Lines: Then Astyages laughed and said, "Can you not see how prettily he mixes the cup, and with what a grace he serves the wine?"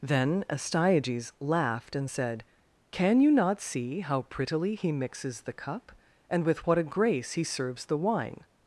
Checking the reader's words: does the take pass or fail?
pass